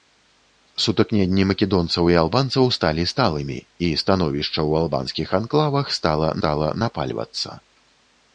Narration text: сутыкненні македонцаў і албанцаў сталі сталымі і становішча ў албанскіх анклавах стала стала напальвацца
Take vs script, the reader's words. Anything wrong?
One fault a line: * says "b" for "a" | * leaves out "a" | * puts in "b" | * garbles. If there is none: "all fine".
all fine